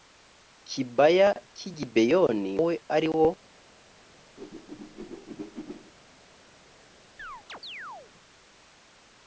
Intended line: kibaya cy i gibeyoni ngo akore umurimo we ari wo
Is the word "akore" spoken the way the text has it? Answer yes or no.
no